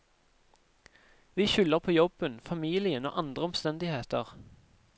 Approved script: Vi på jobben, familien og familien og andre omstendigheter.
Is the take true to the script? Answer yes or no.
no